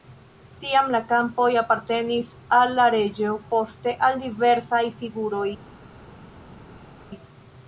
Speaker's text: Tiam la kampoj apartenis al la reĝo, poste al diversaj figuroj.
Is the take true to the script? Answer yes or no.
yes